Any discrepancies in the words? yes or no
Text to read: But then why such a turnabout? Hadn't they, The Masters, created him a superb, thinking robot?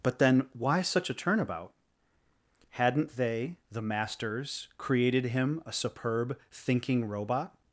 no